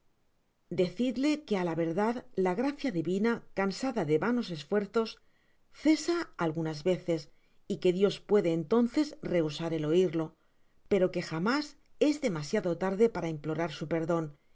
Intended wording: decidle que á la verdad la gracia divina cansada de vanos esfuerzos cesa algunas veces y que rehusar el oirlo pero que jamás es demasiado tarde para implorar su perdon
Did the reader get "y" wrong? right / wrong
right